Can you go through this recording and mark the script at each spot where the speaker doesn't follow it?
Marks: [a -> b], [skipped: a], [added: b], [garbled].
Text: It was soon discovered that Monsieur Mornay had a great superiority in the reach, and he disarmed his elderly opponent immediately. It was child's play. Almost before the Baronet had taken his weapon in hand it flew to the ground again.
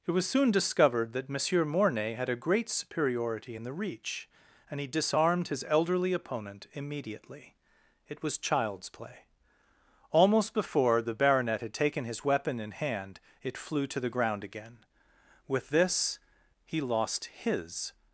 It was soon discovered that Monsieur Mornay had a great superiority in the reach, and he disarmed his elderly opponent immediately. It was child's play. Almost before the Baronet had taken his weapon in hand it flew to the ground again. [added: With this he lost his]